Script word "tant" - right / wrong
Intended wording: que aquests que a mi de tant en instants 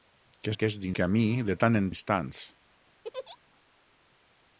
right